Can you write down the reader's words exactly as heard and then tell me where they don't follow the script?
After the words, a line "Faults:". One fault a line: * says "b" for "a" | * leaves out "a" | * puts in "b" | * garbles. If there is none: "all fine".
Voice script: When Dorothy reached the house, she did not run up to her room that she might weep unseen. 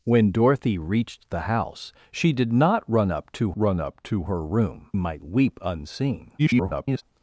When Dorothy reached the house, she did not run up to run up to her room might weep unseen. [garbled]
Faults:
* puts in "run up to"
* leaves out "that she"
* garbles